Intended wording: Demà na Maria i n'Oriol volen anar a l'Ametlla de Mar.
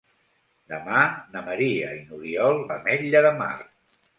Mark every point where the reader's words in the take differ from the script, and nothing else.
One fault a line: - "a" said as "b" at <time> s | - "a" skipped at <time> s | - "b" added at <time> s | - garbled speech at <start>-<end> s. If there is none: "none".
- "volen anar a" skipped at 2.6 s